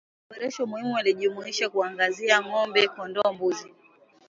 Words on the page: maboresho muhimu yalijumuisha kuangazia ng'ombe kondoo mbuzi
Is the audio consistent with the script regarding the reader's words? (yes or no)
yes